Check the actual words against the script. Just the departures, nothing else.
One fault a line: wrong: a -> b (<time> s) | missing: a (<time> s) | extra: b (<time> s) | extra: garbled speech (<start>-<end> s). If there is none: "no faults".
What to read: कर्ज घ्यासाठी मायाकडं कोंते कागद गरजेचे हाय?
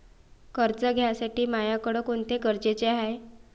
missing: कागद (2.4 s)